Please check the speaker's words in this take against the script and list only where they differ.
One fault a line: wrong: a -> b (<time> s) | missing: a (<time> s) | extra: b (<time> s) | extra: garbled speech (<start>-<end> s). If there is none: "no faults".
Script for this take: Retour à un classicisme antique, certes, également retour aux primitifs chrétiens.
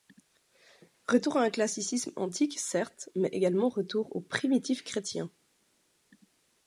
extra: mais (3.1 s)